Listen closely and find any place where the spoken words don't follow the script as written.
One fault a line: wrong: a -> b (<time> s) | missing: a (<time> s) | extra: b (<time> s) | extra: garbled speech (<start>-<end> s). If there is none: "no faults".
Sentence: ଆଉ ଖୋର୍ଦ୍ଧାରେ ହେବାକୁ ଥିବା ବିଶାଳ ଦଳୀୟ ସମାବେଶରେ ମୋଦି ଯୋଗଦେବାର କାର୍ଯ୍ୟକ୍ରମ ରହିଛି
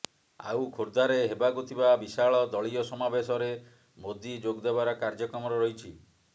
no faults